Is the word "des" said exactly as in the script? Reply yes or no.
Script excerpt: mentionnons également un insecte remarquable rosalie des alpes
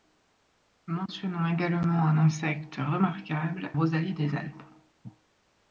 yes